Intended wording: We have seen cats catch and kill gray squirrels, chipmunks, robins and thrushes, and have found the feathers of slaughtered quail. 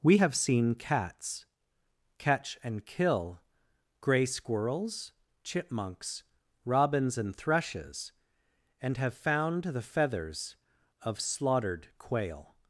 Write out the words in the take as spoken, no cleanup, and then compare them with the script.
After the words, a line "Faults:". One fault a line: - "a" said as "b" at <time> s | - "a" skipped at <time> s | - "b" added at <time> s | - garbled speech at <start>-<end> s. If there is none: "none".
We have seen cats catch and kill gray squirrels, chipmunks, robins and thrushes, and have found the feathers of slaughtered quail.
Faults:
none